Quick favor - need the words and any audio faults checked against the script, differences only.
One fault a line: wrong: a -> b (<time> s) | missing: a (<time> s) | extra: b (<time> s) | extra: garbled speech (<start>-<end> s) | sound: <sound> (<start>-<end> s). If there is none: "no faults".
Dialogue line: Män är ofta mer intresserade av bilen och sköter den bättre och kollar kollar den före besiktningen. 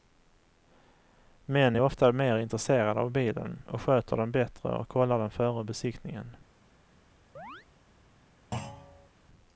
missing: kollar (5.2 s)
sound: chirp (7.4-7.7 s)
sound: thud (8.5-9.1 s)